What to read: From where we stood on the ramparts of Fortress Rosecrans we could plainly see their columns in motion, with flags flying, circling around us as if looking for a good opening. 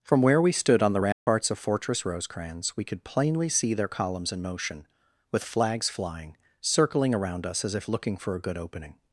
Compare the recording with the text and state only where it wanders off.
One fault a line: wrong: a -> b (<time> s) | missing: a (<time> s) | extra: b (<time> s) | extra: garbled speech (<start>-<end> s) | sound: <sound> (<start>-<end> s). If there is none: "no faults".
sound: dropout (1.1-1.3 s)